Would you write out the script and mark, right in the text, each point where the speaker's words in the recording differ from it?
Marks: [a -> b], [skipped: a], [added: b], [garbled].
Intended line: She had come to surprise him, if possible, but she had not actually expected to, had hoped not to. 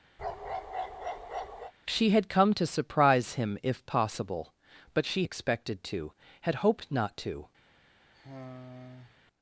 She had come to surprise him, if possible, but she [skipped: had not actually] expected to, had hoped not to.